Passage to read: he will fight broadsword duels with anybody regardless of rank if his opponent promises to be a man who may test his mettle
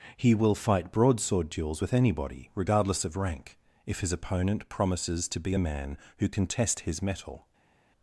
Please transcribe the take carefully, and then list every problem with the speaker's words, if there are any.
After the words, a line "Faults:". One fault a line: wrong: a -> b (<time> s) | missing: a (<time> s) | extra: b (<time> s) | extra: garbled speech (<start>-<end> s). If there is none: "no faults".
he will fight broadsword duels with anybody regardless of rank if his opponent promises to be a man who can test his mettle
Faults:
wrong: may -> can (6.3 s)